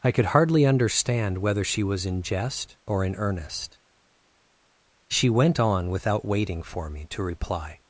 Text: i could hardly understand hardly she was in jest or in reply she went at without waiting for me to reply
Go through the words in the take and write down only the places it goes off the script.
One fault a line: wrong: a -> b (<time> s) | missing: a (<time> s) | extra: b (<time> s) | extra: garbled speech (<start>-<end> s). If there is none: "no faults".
wrong: hardly -> whether (1.4 s)
wrong: reply -> earnest (3.1 s)
wrong: at -> on (5.6 s)